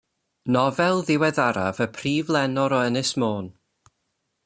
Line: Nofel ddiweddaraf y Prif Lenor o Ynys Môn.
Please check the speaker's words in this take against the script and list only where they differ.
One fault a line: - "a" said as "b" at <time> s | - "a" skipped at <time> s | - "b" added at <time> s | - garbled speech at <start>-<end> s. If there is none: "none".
none